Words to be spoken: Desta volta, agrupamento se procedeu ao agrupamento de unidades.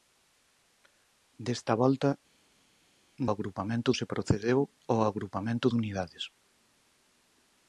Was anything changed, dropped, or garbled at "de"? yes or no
no